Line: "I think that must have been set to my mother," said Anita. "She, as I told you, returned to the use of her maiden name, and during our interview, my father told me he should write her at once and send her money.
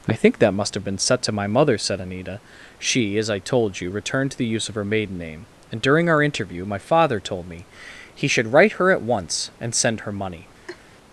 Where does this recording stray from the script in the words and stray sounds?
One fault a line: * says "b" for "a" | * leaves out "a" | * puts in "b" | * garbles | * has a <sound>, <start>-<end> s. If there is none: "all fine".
* has a laugh, 10.7-10.8 s